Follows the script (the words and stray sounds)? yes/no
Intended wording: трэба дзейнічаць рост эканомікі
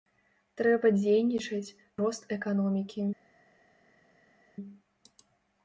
yes